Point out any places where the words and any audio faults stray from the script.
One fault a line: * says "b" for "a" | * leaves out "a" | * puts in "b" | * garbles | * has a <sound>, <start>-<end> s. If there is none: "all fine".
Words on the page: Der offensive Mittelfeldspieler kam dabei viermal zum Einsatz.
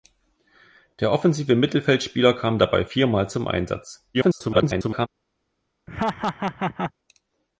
* garbles
* has a laugh, 5.9-6.9 s